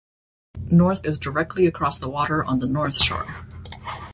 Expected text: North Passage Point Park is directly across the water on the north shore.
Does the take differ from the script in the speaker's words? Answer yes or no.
yes